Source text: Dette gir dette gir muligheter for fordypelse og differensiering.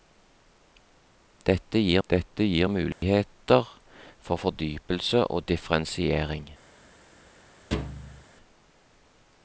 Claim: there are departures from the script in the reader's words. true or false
false